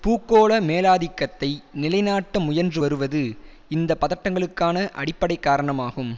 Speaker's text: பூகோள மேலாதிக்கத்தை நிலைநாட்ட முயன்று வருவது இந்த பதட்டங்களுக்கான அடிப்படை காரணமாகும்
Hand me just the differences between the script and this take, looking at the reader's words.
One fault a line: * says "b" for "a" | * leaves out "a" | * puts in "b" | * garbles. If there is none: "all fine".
all fine